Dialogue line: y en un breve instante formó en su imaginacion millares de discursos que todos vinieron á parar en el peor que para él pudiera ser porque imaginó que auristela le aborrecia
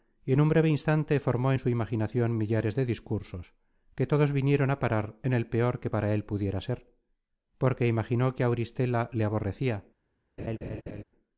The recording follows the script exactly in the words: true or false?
true